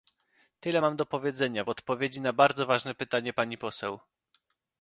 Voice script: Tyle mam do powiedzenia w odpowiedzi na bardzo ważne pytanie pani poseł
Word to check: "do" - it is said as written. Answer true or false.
true